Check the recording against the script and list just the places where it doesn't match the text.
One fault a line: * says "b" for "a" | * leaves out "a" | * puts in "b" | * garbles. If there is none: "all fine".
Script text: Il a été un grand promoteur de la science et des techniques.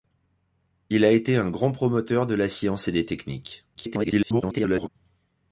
* garbles